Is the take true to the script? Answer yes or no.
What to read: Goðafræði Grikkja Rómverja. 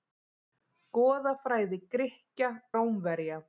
yes